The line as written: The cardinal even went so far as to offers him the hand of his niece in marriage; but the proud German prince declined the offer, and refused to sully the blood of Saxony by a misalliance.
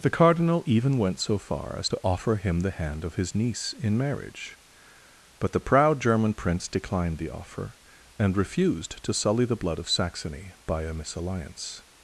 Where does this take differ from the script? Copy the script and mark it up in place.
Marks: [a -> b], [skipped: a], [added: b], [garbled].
The cardinal even went so far as to [offers -> offer] him the hand of his niece in marriage; but the proud German prince declined the offer, and refused to sully the blood of Saxony by a misalliance.